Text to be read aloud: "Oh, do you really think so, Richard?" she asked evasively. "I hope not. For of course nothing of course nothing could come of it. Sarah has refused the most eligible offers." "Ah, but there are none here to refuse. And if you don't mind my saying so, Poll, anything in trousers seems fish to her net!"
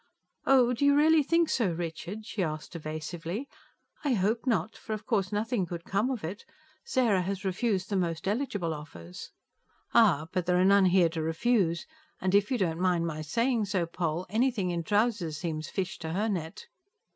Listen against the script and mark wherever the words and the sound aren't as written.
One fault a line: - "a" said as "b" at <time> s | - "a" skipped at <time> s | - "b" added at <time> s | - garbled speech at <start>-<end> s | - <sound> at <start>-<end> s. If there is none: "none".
- "of course nothing" skipped at 5.7 s